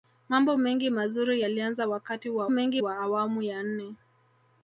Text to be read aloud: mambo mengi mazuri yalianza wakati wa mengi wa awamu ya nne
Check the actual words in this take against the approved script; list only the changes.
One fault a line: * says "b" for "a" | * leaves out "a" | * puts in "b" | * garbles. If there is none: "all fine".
all fine